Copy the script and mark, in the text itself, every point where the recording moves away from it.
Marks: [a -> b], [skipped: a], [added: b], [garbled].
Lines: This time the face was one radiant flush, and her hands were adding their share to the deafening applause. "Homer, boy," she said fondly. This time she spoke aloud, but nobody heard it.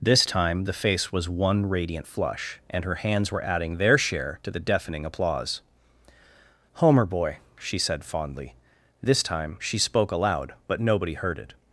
This time the face was one radiant flush, and her hands were adding their share to the deafening applause. "Homer, boy," she said fondly. This time she spoke aloud, but nobody heard it.